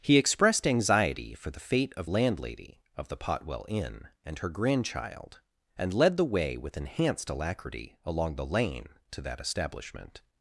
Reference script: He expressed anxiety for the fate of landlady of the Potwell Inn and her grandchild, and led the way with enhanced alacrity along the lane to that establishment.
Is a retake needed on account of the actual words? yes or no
no